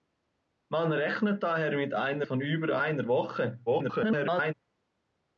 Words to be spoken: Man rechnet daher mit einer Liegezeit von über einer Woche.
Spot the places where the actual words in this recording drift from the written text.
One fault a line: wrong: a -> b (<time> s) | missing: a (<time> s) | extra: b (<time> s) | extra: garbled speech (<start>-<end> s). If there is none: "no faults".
missing: Liegezeit (2.2 s)
extra: garbled speech (3.7-4.5 s)